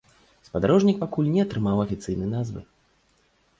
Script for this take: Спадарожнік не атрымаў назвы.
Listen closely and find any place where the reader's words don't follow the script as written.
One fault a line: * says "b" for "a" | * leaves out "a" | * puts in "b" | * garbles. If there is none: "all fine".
* puts in "пакуль"
* puts in "афіцыйнай"